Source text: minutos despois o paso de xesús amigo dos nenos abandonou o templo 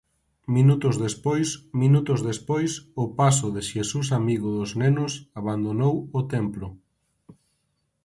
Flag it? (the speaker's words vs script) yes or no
yes